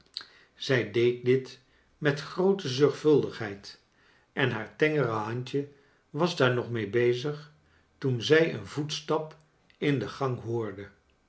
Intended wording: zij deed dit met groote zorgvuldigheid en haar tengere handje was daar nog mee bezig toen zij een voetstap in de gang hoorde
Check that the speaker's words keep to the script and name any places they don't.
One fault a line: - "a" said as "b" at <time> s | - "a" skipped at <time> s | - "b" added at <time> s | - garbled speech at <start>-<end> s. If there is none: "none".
none